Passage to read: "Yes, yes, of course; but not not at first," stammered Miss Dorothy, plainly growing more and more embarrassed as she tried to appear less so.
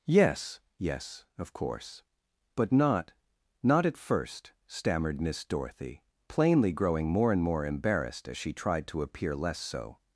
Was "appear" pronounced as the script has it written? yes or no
yes